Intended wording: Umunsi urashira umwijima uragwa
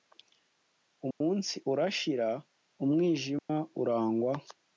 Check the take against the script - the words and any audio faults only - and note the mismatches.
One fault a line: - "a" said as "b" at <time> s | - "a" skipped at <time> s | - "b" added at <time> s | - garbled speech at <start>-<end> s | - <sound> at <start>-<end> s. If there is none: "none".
- dropout at 1.1-1.2 s
- dropout at 3.4-3.5 s